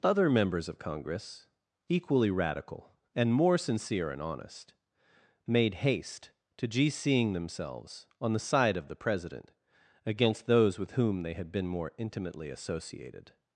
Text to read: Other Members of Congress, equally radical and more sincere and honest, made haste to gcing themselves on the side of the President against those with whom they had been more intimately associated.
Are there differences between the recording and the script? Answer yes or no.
no